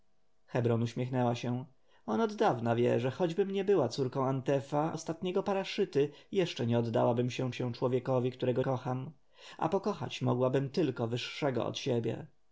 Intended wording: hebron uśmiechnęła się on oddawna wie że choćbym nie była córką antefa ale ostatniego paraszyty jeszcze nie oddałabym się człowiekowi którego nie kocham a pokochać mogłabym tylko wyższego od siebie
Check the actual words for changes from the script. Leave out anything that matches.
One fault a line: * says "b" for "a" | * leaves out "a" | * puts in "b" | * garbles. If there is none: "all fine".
* leaves out "ale"
* puts in "się"
* leaves out "nie"